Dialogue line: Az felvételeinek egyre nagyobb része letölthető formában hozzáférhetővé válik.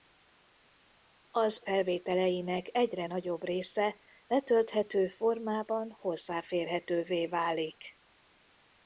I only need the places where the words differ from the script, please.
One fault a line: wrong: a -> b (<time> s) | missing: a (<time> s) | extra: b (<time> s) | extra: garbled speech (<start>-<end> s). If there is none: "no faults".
no faults